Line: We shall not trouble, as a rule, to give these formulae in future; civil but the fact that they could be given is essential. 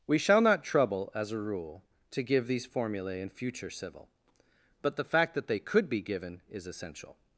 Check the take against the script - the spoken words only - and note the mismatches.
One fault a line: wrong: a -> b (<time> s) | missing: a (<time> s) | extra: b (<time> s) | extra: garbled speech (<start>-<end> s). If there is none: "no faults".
no faults